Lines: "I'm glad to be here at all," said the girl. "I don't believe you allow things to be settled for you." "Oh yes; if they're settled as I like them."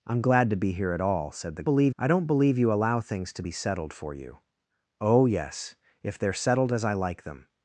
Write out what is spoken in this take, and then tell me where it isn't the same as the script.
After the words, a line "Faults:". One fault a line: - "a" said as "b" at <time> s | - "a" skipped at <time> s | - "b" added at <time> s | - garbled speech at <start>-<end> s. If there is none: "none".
"I'm glad to be here at all," said the believe. "I don't believe you allow things to be settled for you." "Oh yes; if they're settled as I like them."
Faults:
- "girl" said as "believe" at 1.6 s